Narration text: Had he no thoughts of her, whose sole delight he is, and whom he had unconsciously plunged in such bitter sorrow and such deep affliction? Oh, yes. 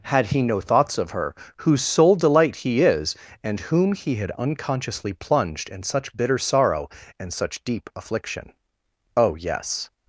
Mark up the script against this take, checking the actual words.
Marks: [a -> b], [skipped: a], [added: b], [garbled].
Had he no thoughts of her, whose sole delight he is, and whom he had unconsciously plunged in such bitter sorrow and such deep affliction? Oh, yes.